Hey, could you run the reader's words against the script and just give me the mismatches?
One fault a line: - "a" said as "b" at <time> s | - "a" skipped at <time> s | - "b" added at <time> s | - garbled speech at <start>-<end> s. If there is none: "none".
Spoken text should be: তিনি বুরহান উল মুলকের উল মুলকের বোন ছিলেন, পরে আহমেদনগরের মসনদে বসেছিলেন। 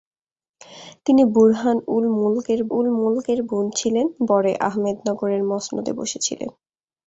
none